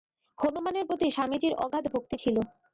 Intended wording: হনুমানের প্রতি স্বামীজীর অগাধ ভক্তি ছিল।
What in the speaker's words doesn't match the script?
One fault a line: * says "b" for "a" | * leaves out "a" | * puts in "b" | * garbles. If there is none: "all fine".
all fine